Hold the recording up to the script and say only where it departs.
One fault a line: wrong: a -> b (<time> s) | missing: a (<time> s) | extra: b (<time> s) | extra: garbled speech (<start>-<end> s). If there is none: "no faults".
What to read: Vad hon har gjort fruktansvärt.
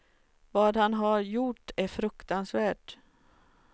wrong: hon -> han (0.8 s)
extra: är (1.8 s)